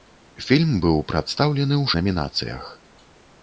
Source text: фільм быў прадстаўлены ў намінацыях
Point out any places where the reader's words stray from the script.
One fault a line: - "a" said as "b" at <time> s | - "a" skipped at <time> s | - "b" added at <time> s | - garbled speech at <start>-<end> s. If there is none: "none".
none